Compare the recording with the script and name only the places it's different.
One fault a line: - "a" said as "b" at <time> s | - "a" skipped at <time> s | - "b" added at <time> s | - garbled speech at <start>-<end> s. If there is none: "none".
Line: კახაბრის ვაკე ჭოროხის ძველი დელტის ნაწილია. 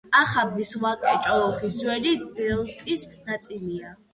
none